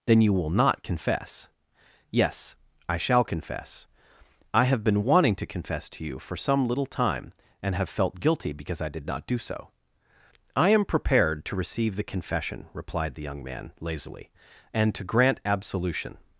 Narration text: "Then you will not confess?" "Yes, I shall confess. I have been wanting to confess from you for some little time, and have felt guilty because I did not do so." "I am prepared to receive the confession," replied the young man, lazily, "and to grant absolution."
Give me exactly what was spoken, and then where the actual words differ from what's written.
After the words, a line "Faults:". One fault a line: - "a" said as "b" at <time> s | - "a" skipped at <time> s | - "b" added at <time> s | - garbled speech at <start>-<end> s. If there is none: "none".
"Then you will not confess?" "Yes, I shall confess. I have been wanting to confess to you for some little time, and have felt guilty because I did not do so." "I am prepared to receive the confession," replied the young man, lazily, "and to grant absolution."
Faults:
- "from" said as "to" at 5.9 s